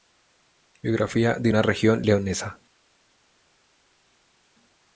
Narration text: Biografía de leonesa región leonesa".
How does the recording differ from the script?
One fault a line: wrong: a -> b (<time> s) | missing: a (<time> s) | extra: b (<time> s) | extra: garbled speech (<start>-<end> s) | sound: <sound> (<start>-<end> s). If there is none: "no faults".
wrong: leonesa -> una (1.5 s)